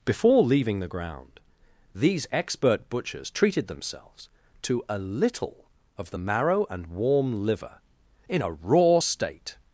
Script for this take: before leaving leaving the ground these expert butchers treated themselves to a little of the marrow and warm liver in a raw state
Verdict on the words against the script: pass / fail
fail